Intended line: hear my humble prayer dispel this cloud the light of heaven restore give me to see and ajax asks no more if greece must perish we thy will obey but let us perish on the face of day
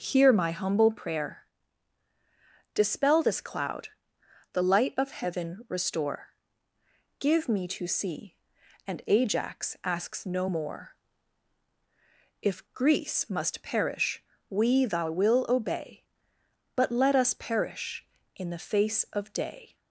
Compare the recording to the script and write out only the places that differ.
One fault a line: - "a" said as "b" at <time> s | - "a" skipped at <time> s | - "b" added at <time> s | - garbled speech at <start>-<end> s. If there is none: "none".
- "on" said as "in" at 18.3 s